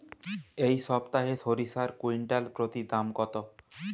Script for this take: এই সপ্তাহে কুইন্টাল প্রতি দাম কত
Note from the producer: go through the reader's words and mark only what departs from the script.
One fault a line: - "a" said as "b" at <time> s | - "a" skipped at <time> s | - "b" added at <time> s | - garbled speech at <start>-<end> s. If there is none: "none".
- "সরিষার" added at 1.4 s